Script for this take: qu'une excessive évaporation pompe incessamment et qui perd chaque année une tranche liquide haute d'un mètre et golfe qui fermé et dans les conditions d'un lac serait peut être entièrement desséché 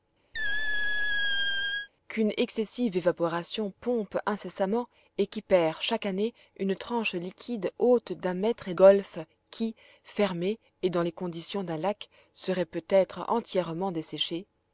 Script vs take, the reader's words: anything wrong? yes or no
no